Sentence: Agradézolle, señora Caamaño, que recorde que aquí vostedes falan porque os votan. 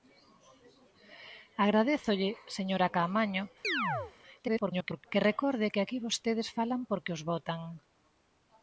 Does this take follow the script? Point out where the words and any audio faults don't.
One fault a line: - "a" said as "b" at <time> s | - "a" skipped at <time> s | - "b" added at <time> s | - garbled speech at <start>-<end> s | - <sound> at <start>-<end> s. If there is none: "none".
- chirp at 3.6-4.1 s
- garbled speech at 4.4-5.0 s